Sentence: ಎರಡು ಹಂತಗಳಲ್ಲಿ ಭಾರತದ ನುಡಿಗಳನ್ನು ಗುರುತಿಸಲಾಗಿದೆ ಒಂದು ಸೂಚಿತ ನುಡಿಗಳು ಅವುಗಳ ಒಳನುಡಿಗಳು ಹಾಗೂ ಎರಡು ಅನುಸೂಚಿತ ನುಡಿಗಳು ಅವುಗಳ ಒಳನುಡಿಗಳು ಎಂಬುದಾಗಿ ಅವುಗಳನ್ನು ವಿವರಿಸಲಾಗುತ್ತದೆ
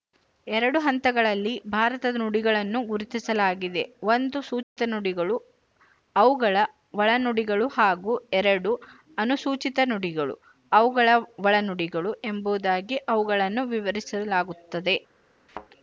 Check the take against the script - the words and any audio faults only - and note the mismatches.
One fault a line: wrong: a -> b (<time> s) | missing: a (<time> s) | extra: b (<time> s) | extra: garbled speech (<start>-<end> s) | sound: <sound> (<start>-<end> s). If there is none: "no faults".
sound: dropout (4.6-4.8 s)
sound: thud (15.5-15.7 s)